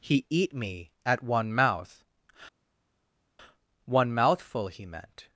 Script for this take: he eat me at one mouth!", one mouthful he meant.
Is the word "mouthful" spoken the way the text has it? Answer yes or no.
yes